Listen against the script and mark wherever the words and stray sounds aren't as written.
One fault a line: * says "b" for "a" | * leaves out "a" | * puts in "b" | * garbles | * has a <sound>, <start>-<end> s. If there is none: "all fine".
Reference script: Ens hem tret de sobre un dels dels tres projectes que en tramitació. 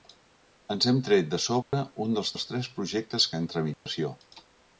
* has a dropout, 1.6-1.7 s
* has a dropout, 3.7-3.9 s